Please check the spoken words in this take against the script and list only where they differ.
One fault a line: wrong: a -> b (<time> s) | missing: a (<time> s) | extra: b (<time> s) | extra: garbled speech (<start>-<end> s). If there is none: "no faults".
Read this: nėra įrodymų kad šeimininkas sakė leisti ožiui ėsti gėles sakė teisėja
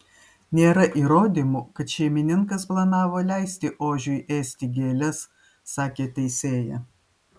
wrong: sakė -> planavo (2.7 s)